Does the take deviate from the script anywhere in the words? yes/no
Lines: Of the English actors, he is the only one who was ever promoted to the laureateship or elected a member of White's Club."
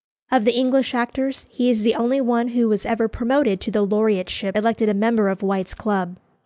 yes